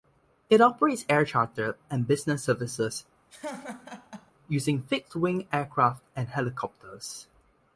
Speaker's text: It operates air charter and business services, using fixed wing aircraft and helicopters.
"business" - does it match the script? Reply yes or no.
yes